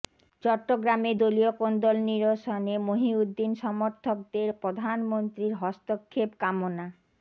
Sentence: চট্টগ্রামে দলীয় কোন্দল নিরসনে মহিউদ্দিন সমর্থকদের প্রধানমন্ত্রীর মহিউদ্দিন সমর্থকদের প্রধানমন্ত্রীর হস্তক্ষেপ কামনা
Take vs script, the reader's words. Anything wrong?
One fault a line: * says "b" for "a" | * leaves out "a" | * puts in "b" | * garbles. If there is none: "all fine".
* leaves out "মহিউদ্দিন সমর্থকদের প্রধানমন্ত্রীর"